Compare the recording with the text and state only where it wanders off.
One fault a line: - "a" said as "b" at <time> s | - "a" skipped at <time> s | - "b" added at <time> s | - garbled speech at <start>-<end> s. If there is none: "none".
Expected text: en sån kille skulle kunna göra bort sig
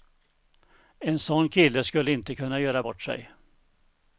- "inte" added at 2.1 s